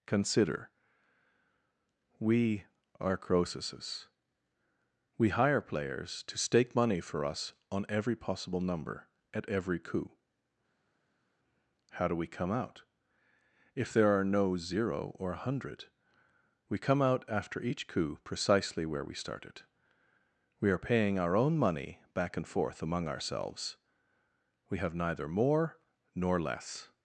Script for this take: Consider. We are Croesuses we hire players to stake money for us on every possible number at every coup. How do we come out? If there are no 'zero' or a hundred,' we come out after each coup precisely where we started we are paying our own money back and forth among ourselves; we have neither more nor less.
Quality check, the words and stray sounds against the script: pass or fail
pass